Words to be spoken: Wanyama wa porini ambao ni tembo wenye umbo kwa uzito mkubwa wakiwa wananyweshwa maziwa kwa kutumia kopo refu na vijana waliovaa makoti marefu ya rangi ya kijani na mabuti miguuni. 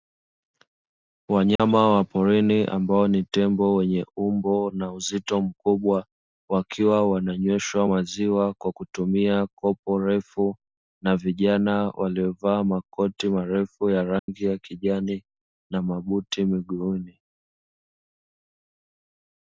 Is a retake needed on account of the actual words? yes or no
yes